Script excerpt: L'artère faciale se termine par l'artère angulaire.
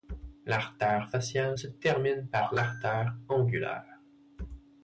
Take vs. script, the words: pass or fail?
pass